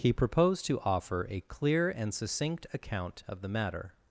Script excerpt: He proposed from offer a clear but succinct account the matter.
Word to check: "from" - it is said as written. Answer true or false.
false